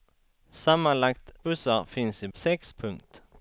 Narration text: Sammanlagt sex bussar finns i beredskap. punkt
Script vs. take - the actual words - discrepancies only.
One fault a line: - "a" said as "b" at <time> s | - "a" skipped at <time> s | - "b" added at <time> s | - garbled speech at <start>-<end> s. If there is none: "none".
- "sex" skipped at 1.3 s
- "beredskap" said as "sex" at 2.3 s